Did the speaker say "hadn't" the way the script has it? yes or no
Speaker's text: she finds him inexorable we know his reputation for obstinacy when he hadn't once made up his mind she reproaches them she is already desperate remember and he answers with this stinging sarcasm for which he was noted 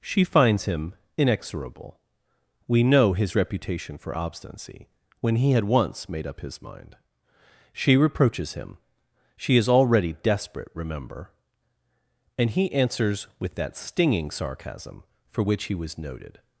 no